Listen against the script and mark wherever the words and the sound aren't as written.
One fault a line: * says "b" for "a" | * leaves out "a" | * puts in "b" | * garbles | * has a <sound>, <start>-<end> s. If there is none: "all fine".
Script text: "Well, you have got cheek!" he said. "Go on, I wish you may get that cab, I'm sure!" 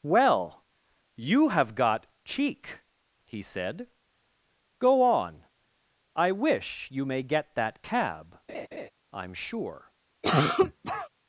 * has a laugh, 8.5-8.9 s
* has a cough, 10.2-11.1 s